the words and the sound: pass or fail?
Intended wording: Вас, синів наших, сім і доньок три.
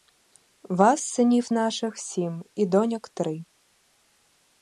pass